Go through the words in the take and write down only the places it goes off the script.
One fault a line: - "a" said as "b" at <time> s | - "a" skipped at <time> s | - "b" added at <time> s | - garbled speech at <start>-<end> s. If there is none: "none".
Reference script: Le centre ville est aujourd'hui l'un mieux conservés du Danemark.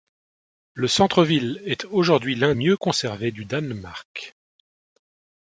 none